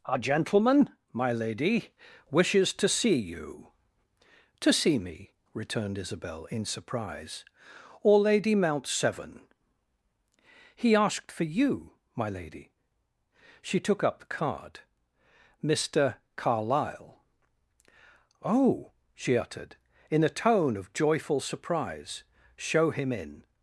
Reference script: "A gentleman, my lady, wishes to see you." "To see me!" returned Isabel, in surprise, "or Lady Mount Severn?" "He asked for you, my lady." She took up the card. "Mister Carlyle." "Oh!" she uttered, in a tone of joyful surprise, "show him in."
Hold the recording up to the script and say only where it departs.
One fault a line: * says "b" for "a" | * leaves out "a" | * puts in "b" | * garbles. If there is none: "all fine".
all fine